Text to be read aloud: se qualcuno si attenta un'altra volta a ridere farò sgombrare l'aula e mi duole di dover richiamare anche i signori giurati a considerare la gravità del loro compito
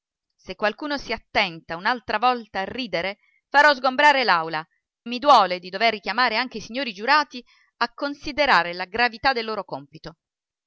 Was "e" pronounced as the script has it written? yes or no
no